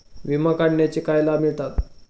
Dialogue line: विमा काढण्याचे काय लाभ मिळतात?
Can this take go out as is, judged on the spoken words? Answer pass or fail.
pass